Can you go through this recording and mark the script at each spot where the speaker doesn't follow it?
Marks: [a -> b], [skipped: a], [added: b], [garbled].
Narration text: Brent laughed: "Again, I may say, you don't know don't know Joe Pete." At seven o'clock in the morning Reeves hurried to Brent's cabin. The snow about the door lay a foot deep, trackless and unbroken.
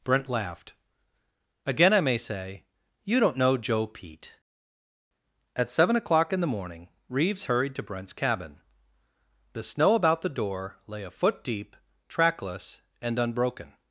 Brent laughed: "Again, I may say, you don't know [skipped: don't know] Joe Pete." At seven o'clock in the morning Reeves hurried to Brent's cabin. The snow about the door lay a foot deep, trackless and unbroken.